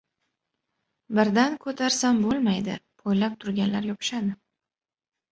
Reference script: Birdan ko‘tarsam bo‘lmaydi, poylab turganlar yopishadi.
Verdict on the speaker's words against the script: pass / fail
pass